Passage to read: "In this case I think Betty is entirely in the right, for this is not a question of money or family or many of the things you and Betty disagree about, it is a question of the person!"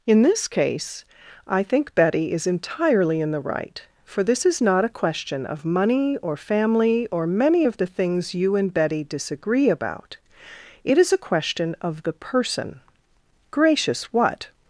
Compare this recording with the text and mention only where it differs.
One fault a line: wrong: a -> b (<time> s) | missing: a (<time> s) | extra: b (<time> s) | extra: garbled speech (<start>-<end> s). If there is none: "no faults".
extra: Gracious what (13.5 s)